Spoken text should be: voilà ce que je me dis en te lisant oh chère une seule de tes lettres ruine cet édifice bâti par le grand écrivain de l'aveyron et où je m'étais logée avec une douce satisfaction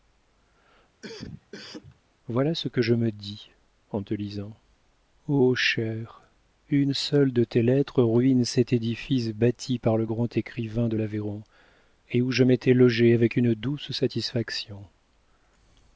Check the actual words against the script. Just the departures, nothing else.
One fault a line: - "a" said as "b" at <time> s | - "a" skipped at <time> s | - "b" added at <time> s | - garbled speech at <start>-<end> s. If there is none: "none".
none